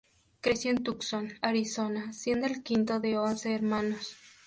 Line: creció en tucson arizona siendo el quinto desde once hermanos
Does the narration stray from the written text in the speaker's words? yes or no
yes